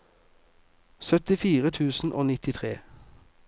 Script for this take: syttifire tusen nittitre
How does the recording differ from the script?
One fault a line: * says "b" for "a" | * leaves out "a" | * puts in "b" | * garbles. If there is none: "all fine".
* puts in "og"